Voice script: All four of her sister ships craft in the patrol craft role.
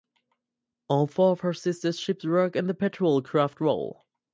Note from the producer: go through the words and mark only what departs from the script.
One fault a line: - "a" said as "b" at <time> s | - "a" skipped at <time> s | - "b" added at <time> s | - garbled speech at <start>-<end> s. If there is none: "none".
- "craft" said as "work" at 2.2 s